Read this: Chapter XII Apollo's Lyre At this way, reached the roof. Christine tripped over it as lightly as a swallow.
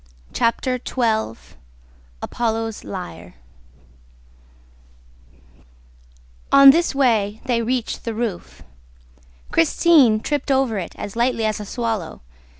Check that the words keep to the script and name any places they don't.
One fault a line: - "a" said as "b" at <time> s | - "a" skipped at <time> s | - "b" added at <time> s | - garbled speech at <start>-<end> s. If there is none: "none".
- "At" said as "On" at 6.5 s
- "they" added at 7.5 s